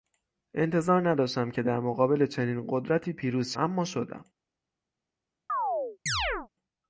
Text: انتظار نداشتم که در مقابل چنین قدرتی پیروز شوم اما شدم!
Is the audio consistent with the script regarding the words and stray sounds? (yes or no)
no